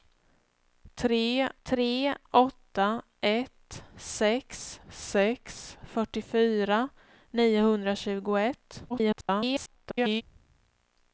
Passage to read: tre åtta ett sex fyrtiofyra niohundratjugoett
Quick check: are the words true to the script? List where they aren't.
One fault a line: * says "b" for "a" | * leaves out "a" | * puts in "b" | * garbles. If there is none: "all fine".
* puts in "tre"
* puts in "sex"
* garbles